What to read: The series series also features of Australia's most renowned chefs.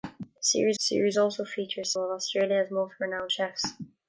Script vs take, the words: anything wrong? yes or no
no